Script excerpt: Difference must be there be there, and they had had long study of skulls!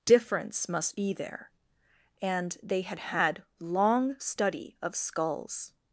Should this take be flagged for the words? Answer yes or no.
yes